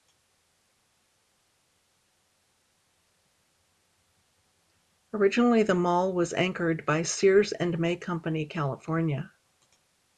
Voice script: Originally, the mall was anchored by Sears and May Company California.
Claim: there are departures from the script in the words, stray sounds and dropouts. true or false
false